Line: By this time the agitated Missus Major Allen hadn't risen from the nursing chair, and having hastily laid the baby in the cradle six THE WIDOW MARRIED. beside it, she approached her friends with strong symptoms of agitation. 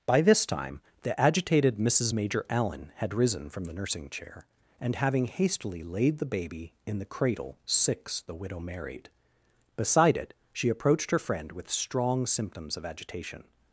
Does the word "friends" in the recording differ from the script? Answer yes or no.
yes